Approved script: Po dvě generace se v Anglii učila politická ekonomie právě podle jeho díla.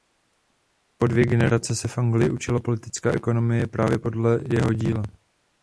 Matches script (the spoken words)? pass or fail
pass